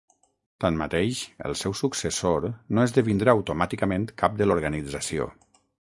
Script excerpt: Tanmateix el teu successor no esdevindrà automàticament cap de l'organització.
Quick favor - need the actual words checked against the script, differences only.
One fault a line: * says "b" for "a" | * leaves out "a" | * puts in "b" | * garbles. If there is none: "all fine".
* says "seu" for "teu"